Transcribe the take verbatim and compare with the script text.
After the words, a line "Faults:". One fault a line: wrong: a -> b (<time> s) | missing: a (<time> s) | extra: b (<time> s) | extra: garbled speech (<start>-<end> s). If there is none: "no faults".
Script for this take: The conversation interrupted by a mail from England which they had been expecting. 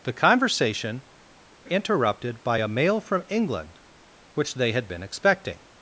The conversation interrupted by a mail from England which they had been expecting.
Faults:
no faults